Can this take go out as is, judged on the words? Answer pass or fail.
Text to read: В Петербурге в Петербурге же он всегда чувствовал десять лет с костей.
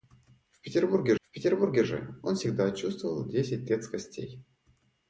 pass